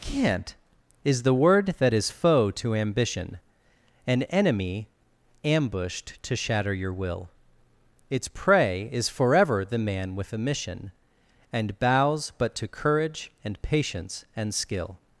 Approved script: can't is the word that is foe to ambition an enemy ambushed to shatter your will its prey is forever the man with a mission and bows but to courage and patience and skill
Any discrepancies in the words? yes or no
no